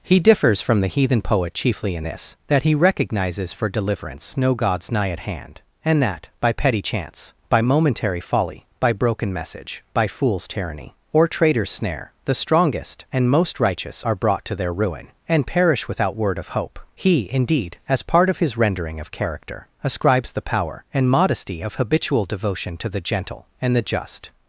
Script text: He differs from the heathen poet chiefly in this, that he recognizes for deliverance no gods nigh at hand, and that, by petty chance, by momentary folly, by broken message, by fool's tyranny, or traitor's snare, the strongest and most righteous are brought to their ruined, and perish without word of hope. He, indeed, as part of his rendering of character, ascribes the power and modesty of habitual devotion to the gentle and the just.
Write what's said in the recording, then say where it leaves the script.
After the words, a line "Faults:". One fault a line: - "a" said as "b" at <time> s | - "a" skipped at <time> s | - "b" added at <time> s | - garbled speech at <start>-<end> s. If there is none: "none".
He differs from the heathen poet chiefly in this, that he recognizes for deliverance no gods nigh at hand, and that, by petty chance, by momentary folly, by broken message, by fool's tyranny, or traitor's snare, the strongest and most righteous are brought to their ruin, and perish without word of hope. He, indeed, as part of his rendering of character, ascribes the power and modesty of habitual devotion to the gentle and the just.
Faults:
- "ruined" said as "ruin" at 14.7 s